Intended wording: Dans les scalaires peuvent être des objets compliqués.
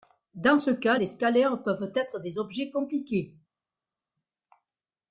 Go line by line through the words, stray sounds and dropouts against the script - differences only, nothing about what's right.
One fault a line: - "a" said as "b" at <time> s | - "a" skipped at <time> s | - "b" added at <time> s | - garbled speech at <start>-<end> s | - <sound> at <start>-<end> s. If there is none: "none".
- "ce cas" added at 0.5 s